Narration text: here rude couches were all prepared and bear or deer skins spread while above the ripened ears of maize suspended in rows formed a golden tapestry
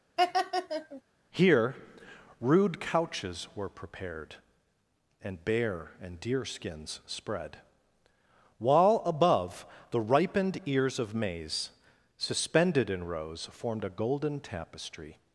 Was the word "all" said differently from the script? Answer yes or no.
yes